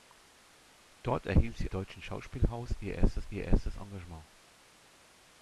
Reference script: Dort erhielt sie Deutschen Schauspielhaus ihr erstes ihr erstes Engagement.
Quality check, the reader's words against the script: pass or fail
pass